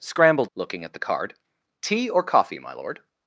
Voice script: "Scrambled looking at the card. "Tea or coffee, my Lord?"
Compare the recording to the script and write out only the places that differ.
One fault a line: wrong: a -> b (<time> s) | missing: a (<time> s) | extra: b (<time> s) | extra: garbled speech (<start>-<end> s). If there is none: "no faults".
no faults